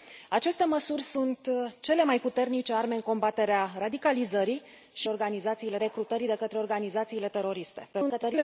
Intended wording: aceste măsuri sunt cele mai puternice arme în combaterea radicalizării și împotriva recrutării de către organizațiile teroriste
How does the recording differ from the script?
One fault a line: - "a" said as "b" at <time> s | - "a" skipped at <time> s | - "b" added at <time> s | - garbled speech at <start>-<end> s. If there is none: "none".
- "împotriva" said as "organizațiile" at 5.1 s
- garbled speech at 7.9-8.4 s